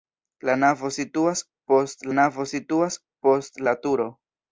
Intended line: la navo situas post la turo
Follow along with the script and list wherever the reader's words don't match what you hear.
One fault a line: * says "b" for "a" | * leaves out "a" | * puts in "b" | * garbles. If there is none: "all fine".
* puts in "navo situas post"